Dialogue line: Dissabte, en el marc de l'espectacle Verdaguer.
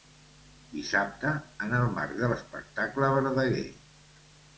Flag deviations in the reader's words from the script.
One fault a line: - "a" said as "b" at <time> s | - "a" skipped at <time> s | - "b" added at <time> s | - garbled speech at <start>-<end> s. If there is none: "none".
none